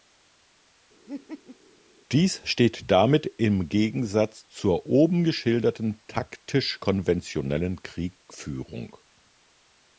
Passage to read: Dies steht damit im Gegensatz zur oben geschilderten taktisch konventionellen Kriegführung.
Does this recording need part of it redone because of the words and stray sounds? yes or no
yes